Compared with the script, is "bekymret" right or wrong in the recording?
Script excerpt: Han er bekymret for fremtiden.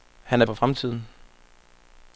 wrong